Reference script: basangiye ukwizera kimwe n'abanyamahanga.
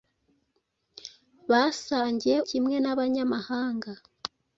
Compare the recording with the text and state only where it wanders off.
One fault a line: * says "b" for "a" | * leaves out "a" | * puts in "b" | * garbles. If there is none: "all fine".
* leaves out "ukwizera"